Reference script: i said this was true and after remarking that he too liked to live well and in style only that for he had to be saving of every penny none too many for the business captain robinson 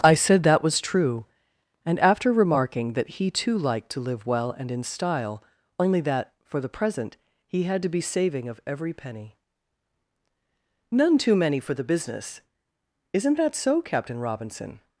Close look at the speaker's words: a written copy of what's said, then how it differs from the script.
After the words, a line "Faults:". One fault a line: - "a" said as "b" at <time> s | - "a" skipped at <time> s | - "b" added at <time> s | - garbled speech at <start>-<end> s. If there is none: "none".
i said that was true and after remarking that he too liked to live well and in style only that for the present he had to be saving of every penny none too many for the business isn't that so captain robinson
Faults:
- "this" said as "that" at 0.4 s
- "the present" added at 6.6 s
- "isn't that so" added at 13.1 s